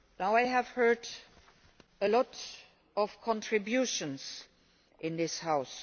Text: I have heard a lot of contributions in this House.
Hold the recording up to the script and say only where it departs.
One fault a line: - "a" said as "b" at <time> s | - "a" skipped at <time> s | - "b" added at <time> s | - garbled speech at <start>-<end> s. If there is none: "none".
none